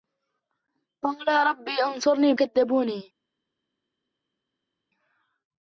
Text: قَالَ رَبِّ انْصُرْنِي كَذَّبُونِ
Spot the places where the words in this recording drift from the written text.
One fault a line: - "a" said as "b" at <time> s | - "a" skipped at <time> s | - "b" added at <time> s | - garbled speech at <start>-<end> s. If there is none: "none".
none